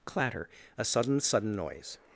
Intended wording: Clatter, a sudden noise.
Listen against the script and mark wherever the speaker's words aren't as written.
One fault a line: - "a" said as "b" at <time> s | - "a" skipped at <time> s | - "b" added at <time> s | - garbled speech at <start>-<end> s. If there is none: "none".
- "sudden" added at 1.2 s